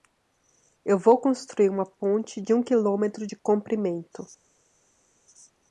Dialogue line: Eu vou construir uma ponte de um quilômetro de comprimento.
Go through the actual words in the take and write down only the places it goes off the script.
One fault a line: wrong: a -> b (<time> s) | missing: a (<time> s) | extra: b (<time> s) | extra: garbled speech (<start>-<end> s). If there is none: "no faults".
no faults